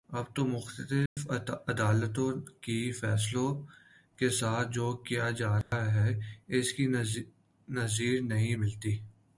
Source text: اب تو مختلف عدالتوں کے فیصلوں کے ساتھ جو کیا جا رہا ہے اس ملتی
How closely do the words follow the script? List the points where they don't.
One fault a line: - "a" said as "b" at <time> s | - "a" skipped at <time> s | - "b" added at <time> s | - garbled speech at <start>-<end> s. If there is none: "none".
- "کی نظیر نہیں" added at 6.7 s